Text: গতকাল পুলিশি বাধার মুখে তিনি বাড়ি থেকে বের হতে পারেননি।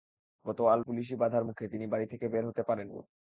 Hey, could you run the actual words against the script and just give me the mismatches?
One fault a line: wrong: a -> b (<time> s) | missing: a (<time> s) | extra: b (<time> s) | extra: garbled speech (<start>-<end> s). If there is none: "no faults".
no faults